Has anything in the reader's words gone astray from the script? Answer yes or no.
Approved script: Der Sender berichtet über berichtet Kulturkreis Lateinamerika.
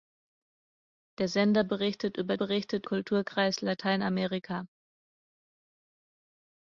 no